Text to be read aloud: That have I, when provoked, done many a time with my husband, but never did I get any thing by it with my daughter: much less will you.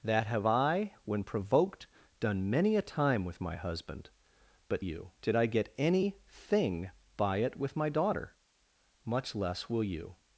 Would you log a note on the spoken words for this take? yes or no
yes